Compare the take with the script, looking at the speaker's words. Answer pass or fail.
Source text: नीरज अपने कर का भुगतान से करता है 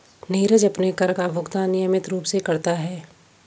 fail